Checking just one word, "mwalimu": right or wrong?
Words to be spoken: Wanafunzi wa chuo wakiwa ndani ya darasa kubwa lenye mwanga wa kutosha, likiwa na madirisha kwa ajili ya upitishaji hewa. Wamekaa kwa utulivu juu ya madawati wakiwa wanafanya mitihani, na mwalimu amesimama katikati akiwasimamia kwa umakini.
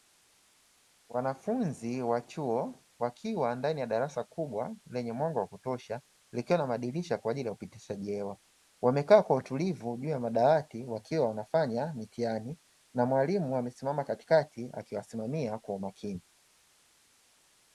right